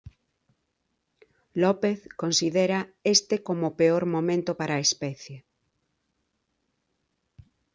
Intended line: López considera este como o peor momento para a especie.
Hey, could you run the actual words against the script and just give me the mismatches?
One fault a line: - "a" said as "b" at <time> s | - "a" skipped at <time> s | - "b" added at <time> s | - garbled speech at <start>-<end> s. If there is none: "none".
none